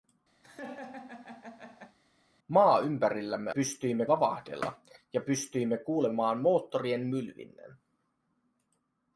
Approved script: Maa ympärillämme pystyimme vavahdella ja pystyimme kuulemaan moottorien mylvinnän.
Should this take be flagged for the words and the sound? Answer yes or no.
yes